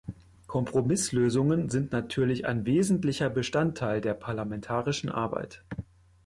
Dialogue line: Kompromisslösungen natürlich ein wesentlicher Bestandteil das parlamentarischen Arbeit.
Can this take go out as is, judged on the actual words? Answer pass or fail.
fail